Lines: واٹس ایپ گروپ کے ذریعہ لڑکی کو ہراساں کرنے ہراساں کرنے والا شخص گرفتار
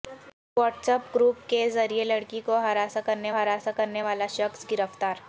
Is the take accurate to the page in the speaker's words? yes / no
yes